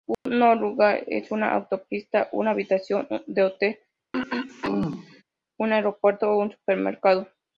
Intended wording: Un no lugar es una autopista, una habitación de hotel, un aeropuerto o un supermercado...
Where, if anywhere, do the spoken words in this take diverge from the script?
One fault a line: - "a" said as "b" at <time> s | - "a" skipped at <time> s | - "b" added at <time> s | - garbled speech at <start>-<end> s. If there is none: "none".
none